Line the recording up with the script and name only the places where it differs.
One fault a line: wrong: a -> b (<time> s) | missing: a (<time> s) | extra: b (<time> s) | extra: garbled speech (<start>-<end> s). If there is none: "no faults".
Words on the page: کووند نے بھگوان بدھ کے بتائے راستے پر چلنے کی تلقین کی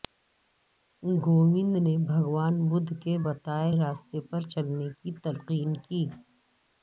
no faults